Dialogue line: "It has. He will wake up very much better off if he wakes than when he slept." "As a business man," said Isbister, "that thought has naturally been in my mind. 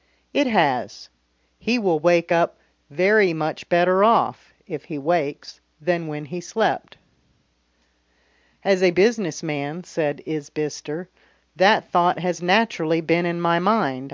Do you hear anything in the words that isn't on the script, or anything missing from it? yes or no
no